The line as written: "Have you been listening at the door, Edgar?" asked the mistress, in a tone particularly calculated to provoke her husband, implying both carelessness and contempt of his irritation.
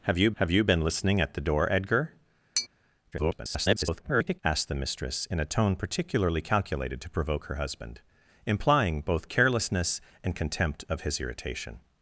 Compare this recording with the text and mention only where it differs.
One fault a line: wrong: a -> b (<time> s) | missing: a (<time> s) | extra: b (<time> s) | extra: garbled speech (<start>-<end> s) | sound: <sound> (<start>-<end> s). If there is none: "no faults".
extra: have you (0.4 s)
sound: tap (2.6-2.7 s)
extra: garbled speech (3.1-4.4 s)